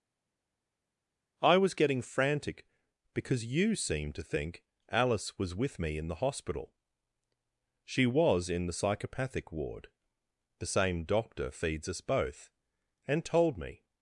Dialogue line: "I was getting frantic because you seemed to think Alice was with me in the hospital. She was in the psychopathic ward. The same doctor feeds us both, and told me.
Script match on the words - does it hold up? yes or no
yes